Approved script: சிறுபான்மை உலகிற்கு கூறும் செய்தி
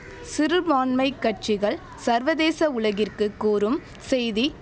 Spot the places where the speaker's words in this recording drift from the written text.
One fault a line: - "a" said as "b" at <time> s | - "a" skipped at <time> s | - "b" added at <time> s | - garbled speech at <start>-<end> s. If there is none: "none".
- "கட்சிகள் சர்வதேச" added at 1.2 s